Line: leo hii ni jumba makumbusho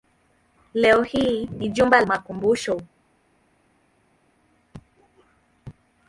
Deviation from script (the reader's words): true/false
false